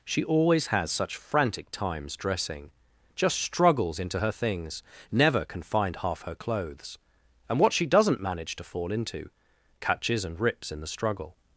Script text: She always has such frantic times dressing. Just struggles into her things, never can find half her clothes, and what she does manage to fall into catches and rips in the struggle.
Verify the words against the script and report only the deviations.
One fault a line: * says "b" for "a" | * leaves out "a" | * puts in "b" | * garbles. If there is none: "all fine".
* says "doesn't" for "does"